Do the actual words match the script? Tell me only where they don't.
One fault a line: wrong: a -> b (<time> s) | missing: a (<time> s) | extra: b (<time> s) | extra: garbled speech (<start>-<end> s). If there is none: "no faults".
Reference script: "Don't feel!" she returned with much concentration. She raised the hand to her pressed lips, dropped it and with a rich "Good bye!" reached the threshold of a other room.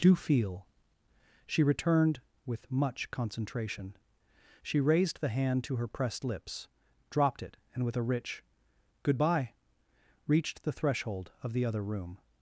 wrong: Don't -> Do (0.0 s)
wrong: a -> the (11.5 s)